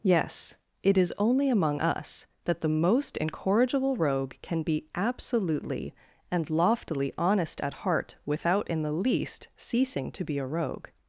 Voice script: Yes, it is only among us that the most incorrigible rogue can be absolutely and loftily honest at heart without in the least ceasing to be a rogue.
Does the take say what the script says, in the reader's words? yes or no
yes